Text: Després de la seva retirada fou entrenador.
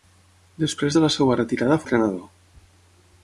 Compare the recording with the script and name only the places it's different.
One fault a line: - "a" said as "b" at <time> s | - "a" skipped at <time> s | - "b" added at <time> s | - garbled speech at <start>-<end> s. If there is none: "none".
- "fou" skipped at 1.8 s